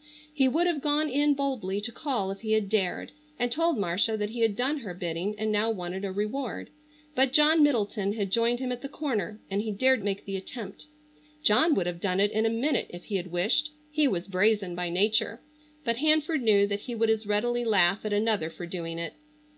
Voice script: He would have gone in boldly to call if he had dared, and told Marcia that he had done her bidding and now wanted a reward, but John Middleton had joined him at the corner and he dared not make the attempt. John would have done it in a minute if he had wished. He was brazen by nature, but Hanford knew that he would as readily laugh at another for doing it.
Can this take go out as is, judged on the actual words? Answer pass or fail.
fail